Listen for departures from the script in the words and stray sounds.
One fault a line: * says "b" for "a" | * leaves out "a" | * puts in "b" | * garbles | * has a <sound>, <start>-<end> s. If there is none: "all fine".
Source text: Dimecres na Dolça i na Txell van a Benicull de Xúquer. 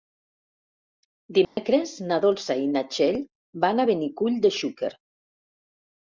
* has a dropout, 1.4-1.6 s